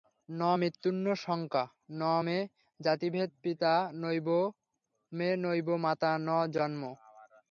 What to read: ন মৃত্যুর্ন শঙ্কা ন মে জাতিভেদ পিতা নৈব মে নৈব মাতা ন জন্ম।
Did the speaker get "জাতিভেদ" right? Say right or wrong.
right